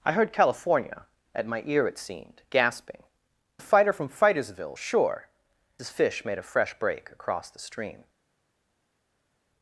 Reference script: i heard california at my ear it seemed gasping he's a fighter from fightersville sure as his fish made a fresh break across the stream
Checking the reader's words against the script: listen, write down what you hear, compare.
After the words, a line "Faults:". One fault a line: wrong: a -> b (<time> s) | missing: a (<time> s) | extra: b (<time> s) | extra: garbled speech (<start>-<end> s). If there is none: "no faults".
i heard california at my ear it seemed gasping a fighter from fightersville sure his fish made a fresh break across the stream
Faults:
missing: he's (3.0 s)
missing: as (5.3 s)